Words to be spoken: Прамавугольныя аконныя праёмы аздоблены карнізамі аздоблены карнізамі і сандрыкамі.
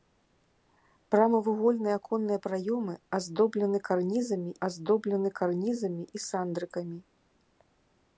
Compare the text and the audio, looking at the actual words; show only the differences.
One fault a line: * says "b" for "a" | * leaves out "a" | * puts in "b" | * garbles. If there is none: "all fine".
all fine